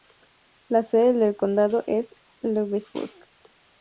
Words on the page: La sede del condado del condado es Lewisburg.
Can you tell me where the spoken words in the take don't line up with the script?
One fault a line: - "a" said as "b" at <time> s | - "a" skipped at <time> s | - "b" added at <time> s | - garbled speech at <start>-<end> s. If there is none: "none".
- "del condado" skipped at 1.8 s